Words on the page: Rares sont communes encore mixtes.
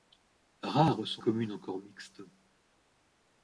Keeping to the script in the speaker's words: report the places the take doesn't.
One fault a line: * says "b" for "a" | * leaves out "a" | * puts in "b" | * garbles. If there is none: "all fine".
all fine